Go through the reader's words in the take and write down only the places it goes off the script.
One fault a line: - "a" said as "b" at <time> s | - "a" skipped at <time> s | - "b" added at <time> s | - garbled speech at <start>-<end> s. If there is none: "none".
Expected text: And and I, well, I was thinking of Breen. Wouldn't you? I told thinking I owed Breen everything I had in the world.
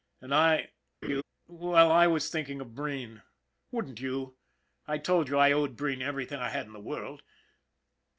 - "and" skipped at 0.3 s
- "thinking" said as "you" at 5.3 s